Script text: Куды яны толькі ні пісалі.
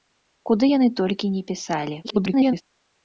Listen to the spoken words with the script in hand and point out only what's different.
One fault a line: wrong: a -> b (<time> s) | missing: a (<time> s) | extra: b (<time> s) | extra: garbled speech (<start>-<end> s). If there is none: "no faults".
extra: garbled speech (2.0-2.6 s)